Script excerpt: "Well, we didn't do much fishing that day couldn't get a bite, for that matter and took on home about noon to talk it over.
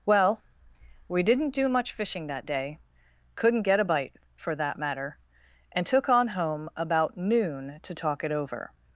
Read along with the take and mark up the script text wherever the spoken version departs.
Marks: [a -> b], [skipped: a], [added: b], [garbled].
"Well, we didn't do much fishing that day couldn't get a bite, for that matter and took on home about noon to talk it over.